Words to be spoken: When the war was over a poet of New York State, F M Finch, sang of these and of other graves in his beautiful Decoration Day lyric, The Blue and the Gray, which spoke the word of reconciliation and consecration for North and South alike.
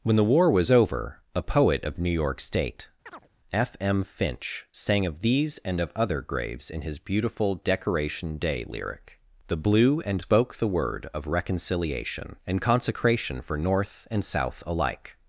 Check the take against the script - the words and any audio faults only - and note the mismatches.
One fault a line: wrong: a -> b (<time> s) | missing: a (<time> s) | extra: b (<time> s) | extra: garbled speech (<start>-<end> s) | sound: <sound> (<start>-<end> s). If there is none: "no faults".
sound: chirp (3.1-3.3 s)
missing: the Gray which (10.2 s)